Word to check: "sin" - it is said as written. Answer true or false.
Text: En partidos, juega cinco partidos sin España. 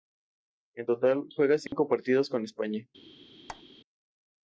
false